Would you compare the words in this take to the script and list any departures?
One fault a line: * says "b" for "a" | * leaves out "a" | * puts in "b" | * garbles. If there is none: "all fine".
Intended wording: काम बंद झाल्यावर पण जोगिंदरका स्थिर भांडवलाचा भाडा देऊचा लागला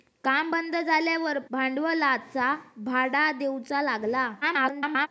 * leaves out "पण जोगिंदरका स्थिर"
* garbles